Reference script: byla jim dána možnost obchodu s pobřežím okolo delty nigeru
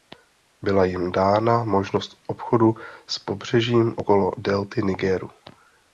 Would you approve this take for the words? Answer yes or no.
yes